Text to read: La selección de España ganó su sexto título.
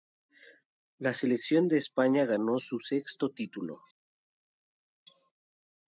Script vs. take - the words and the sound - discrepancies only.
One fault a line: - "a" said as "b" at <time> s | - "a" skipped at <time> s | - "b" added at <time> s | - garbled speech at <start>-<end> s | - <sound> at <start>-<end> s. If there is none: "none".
none